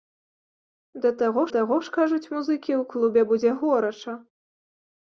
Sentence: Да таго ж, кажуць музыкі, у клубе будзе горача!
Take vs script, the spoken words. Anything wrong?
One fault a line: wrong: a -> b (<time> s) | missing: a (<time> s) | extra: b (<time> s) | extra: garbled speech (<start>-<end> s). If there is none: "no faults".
extra: таго (1.5 s)